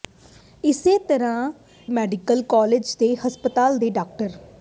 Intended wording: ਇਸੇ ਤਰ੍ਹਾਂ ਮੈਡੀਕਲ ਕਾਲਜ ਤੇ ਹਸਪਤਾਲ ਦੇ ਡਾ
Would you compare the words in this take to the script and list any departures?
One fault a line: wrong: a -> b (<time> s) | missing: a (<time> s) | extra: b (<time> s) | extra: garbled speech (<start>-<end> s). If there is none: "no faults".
no faults